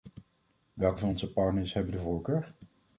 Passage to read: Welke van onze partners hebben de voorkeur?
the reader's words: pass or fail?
pass